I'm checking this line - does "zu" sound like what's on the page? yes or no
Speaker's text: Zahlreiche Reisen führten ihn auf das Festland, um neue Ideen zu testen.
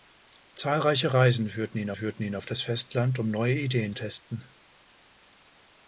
no